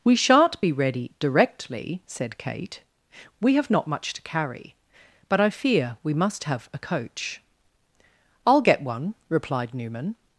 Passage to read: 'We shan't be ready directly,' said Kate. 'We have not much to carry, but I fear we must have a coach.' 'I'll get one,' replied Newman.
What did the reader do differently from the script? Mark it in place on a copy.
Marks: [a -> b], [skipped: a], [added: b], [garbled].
'We shan't be ready directly,' said Kate. 'We have not much to carry, but I fear we must have a coach.' 'I'll get one,' replied Newman.